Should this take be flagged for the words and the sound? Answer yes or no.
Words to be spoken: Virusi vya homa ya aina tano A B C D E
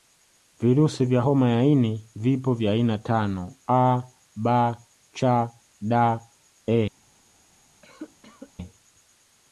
yes